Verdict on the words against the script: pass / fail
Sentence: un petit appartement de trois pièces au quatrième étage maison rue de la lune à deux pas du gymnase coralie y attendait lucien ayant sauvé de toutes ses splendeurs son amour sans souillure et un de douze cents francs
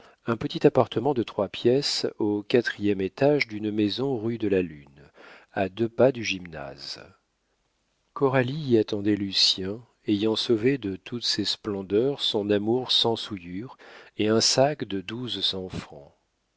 fail